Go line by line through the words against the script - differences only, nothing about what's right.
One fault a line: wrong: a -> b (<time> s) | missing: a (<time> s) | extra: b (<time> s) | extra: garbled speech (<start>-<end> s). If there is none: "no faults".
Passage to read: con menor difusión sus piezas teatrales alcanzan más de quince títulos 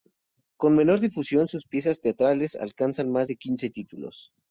no faults